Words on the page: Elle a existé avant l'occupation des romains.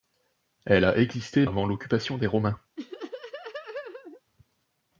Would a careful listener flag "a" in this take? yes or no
no